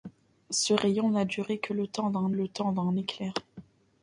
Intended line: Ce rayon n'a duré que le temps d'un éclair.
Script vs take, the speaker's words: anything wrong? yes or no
yes